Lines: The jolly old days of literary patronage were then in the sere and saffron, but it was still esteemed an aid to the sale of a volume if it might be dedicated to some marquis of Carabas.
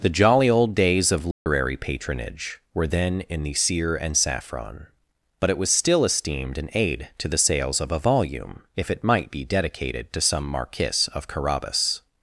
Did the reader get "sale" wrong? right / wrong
wrong